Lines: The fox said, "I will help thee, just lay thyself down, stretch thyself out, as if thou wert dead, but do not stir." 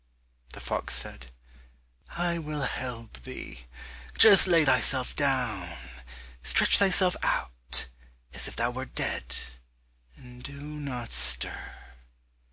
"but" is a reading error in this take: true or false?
true